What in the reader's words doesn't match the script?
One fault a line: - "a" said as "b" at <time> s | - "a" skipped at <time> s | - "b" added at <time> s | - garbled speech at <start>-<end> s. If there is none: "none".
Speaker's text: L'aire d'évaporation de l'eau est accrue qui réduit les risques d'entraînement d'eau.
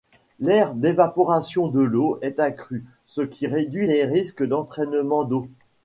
- "ce" added at 3.0 s